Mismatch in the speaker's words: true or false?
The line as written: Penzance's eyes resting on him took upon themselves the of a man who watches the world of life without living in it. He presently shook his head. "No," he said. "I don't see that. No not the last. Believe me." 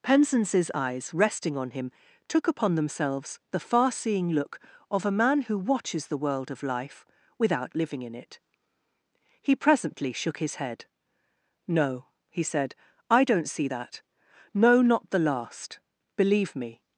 true